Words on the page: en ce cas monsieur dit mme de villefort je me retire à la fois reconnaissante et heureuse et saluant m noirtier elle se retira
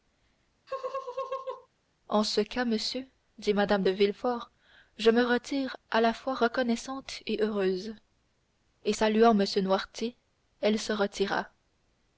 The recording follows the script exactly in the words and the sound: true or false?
false